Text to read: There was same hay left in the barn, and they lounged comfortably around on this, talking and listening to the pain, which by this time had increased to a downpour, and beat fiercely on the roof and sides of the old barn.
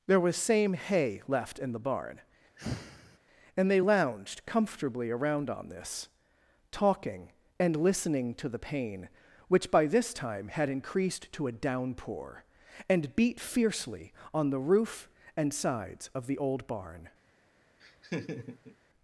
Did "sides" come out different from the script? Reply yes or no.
no